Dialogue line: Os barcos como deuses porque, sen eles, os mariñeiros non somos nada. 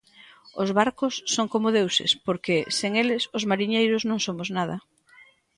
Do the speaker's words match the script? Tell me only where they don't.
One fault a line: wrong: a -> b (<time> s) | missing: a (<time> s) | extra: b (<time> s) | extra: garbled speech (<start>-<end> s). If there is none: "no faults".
extra: son (1.4 s)